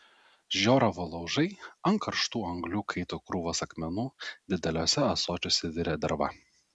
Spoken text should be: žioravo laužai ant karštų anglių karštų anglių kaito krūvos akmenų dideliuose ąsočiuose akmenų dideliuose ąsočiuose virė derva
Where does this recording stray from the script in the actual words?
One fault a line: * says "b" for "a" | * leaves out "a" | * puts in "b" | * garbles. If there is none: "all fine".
* leaves out "karštų anglių"
* leaves out "akmenų dideliuose ąsočiuose"